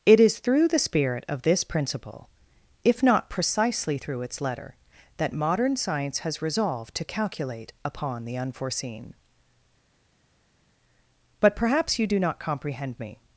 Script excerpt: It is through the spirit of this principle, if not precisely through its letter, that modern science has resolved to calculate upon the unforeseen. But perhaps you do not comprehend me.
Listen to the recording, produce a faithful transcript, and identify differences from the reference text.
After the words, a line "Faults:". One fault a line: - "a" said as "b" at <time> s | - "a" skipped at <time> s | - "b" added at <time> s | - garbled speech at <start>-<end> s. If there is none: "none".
It is through the spirit of this principle, if not precisely through its letter, that modern science has resolved to calculate upon the unforeseen. But perhaps you do not comprehend me.
Faults:
none